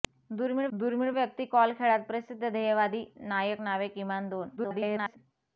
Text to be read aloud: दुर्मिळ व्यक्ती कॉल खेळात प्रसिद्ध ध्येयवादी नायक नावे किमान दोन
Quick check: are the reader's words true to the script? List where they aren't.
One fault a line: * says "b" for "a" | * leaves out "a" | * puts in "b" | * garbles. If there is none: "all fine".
* puts in "दुर्मिळ"
* garbles